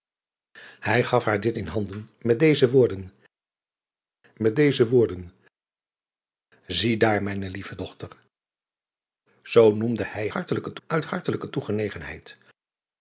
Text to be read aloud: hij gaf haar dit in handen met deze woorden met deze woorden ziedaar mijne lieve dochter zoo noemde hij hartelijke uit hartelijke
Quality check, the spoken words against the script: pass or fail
pass